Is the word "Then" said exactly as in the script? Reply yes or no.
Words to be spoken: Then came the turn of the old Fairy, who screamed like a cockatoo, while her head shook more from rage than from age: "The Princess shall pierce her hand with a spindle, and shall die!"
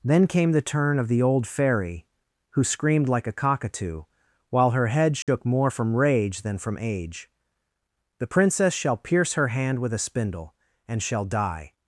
yes